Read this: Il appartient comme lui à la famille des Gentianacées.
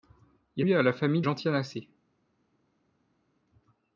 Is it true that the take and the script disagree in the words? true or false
true